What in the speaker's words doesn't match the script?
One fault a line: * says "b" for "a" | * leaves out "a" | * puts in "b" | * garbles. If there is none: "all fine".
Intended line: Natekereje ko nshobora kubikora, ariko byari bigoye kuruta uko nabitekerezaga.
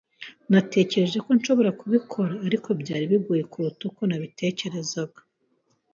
all fine